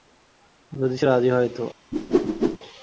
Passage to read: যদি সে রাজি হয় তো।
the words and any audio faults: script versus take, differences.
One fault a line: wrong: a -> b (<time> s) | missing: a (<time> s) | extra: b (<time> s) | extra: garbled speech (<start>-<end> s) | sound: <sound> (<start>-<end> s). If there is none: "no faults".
sound: whoosh (1.9-2.6 s)